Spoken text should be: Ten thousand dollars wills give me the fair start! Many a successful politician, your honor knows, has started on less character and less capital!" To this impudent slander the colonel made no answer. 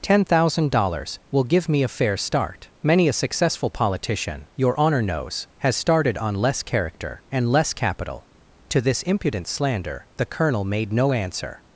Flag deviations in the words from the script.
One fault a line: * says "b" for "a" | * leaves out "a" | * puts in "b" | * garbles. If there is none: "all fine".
* says "will" for "wills"
* says "a" for "the"